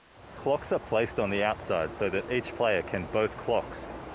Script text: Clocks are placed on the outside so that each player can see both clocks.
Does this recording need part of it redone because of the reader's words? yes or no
yes